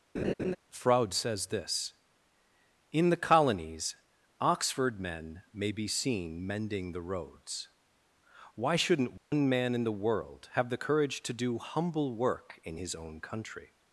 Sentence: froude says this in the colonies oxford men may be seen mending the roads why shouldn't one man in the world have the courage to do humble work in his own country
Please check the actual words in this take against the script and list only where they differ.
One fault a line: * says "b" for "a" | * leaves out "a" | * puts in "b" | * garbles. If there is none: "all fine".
all fine